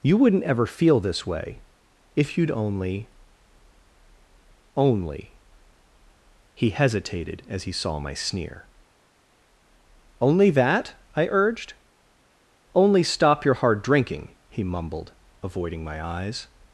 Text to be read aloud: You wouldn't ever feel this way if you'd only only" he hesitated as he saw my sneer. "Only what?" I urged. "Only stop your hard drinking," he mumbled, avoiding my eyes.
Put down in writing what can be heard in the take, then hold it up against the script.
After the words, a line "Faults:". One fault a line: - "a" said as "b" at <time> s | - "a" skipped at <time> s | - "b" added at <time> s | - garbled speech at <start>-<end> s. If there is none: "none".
You wouldn't ever feel this way if you'd only only" he hesitated as he saw my sneer. "Only that?" I urged. "Only stop your hard drinking," he mumbled, avoiding my eyes.
Faults:
- "what" said as "that" at 10.5 s